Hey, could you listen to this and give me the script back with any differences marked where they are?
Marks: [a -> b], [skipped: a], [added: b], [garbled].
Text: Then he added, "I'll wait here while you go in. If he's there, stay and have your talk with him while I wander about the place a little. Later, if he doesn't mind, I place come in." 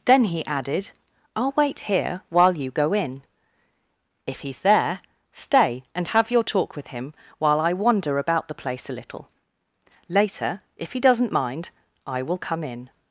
Then he added, "I'll wait here while you go in. If he's there, stay and have your talk with him while I wander about the place a little. Later, if he doesn't mind, I [place -> will] come in."